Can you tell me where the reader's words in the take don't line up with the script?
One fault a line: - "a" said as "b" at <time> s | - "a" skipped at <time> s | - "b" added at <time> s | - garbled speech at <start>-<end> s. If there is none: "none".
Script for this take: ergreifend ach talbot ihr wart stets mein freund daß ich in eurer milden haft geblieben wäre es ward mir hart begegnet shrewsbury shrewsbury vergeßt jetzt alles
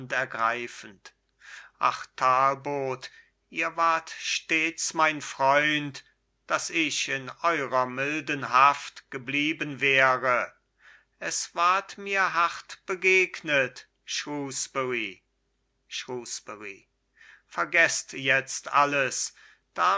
none